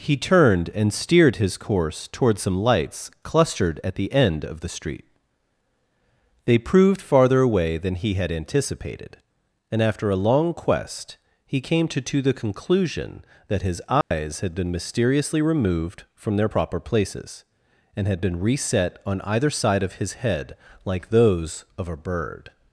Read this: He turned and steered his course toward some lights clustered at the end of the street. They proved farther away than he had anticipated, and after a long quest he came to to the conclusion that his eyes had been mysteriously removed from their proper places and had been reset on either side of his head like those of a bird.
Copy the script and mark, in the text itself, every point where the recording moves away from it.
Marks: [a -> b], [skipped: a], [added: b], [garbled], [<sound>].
He turned and steered his course toward some lights clustered at the end of the street. They proved farther away than he had anticipated, and after a long quest he came to to the conclusion that his eyes [dropout] had been mysteriously removed from their proper places and had been reset on either side of his head like those of a bird.